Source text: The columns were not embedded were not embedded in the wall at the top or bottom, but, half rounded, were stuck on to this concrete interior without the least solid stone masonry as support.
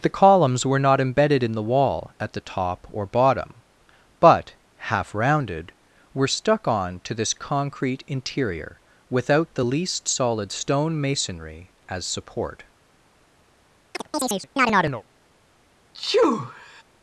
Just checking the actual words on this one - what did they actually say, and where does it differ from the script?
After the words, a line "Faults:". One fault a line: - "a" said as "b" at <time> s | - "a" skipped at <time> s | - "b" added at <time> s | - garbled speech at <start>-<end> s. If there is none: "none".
The columns were not embedded in the wall at the top or bottom, but, half rounded, were stuck on to this concrete interior without the least solid stone masonry as support.
Faults:
- "were not embedded" skipped at 1.4 s